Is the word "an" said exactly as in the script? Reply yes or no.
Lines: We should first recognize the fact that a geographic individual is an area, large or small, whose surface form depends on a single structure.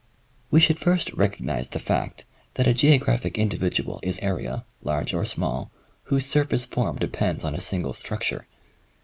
no